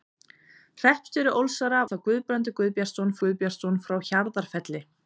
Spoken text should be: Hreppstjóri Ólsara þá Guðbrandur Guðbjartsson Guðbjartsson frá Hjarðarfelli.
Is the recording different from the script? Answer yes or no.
no